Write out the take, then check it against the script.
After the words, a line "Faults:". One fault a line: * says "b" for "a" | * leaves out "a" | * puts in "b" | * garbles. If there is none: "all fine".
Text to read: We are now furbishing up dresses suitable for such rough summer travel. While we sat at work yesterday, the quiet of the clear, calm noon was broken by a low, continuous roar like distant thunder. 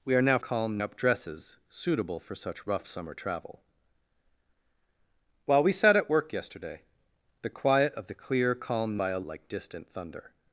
We are now calm up dresses suitable for such rough summer travel. While we sat at work yesterday, the quiet of the clear, calm by a like distant thunder.
Faults:
* says "calm" for "furbishing"
* leaves out "noon was broken"
* leaves out "low continuous roar"